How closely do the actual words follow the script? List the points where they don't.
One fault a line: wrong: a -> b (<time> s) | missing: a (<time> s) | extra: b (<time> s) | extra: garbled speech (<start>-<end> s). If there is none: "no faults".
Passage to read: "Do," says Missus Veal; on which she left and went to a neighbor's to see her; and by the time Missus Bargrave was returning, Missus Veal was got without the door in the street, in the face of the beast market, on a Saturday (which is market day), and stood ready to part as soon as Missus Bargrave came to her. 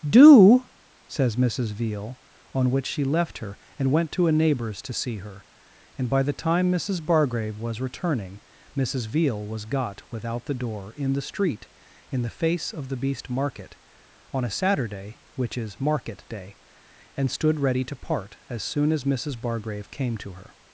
extra: her (3.4 s)